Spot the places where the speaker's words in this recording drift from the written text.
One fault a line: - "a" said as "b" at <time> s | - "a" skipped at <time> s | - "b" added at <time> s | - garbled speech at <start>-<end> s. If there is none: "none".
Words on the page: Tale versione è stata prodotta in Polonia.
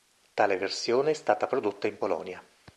none